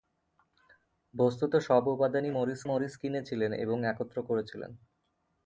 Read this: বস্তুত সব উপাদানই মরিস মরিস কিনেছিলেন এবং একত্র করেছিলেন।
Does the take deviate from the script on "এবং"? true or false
false